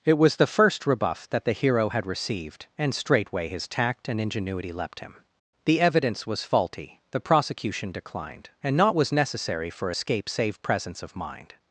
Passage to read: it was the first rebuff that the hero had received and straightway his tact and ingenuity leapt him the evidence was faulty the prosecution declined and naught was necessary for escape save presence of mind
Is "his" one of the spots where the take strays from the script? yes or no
no